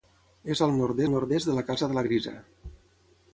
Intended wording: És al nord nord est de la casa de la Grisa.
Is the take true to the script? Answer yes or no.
yes